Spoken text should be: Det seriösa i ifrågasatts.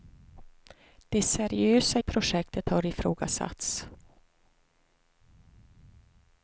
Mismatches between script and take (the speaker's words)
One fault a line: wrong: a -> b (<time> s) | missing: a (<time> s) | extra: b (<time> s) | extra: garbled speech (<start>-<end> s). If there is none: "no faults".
extra: projektet har (2.0 s)